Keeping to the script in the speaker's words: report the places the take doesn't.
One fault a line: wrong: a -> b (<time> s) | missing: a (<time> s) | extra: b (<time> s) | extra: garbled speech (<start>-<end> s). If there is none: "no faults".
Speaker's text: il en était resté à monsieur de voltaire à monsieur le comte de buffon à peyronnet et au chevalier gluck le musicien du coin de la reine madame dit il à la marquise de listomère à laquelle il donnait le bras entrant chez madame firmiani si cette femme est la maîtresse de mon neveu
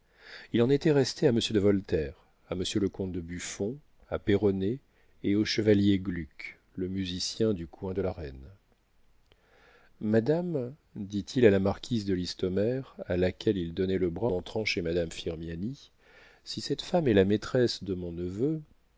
no faults